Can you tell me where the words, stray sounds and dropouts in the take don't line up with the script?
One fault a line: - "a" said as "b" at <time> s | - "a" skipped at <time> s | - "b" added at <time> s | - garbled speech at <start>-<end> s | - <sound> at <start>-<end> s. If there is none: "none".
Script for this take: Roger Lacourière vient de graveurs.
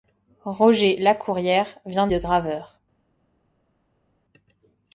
none